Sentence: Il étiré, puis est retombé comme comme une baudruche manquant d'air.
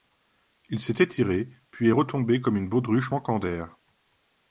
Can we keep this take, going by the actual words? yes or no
no